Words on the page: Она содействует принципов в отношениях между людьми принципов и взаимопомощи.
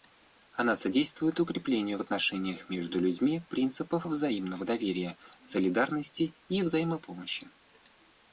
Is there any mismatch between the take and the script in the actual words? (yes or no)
yes